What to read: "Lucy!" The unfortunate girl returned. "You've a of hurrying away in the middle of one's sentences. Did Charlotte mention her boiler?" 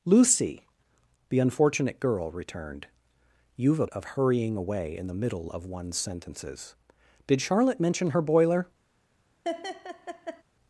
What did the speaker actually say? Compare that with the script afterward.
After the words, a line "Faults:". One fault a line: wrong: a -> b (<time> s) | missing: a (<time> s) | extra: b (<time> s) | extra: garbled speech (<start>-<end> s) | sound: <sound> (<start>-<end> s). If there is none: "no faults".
"Lucy!" The unfortunate girl returned. "You've a of hurrying away in the middle of one's sentences. Did Charlotte mention her boiler?"
Faults:
sound: laugh (9.4-10.4 s)